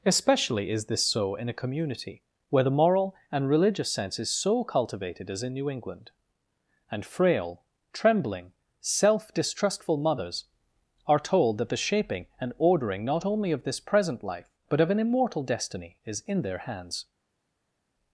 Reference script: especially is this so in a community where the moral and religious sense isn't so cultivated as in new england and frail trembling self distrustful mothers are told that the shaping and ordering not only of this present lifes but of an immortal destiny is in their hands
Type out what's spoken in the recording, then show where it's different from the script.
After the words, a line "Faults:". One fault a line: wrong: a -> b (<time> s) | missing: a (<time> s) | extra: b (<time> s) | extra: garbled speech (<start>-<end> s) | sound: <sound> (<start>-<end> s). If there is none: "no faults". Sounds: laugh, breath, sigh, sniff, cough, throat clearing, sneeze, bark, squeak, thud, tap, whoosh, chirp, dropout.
especially is this so in a community where the moral and religious sense is so cultivated as in new england and frail trembling self distrustful mothers are told that the shaping and ordering not only of this present life but of an immortal destiny is in their hands
Faults:
wrong: isn't -> is (4.2 s)
wrong: lifes -> life (14.2 s)